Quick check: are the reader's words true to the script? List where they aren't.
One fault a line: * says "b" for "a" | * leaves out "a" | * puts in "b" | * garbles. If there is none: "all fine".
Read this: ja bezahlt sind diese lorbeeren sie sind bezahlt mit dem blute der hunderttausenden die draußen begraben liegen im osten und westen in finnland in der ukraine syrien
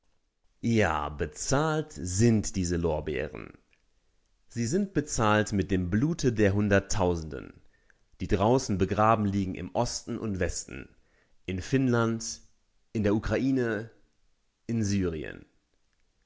* puts in "in"